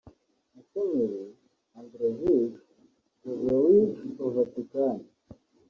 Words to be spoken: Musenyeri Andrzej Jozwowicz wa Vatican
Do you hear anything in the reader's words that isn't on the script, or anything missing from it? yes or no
no